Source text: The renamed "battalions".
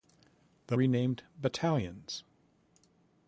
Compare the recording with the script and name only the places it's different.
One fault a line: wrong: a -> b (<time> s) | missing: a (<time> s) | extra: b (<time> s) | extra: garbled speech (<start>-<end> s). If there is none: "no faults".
no faults